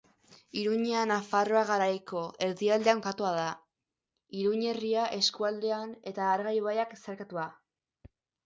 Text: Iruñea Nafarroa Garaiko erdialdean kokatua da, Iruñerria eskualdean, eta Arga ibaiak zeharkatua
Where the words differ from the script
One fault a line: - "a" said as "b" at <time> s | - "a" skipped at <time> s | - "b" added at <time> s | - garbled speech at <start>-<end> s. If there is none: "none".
none